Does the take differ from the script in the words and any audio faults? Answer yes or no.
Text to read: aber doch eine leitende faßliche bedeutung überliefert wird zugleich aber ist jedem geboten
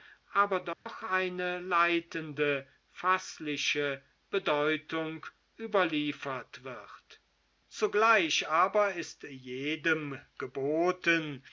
yes